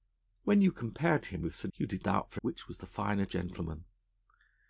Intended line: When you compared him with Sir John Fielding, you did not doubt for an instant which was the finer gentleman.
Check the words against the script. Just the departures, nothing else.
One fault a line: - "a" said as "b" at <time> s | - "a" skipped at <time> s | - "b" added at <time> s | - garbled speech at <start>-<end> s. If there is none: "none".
- "John Fielding" skipped at 1.7 s
- "not" skipped at 2.0 s
- "an instant" skipped at 2.4 s